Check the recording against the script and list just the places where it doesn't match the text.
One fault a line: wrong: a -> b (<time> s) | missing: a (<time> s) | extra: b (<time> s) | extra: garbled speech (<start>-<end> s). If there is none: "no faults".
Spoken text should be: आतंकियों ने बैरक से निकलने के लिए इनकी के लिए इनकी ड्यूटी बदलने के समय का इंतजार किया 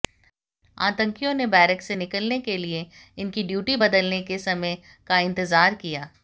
missing: के लिए इनकी (3.4 s)